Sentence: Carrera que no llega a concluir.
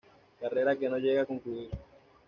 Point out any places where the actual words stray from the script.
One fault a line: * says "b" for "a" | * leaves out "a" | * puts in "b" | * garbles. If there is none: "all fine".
all fine